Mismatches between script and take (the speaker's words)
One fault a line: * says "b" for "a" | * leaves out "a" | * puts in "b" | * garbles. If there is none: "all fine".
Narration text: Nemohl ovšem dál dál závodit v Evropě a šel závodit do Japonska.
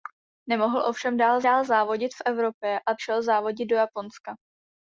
all fine